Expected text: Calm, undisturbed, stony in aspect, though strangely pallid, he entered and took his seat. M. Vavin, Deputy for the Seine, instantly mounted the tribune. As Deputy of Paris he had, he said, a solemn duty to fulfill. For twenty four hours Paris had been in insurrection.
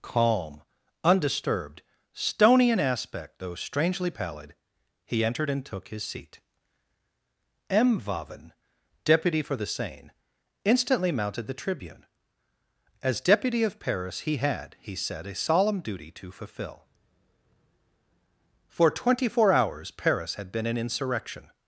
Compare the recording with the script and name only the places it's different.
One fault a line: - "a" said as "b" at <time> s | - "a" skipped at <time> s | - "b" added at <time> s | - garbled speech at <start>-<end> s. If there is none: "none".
none